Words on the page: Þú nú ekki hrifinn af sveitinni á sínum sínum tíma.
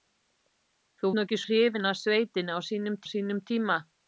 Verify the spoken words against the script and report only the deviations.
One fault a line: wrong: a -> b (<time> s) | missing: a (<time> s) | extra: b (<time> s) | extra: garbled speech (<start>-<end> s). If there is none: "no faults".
no faults